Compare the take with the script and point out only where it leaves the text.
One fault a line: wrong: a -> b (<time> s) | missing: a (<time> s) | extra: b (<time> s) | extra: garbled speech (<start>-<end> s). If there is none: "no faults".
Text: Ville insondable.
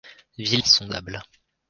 no faults